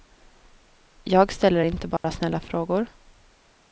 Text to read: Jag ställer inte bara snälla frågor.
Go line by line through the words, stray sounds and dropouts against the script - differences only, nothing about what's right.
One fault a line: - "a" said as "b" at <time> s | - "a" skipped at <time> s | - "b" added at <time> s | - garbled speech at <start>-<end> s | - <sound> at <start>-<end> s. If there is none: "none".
- dropout at 2.0-2.0 s